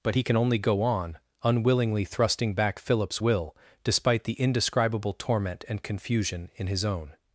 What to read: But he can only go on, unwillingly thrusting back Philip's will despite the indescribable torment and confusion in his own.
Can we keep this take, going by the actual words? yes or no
yes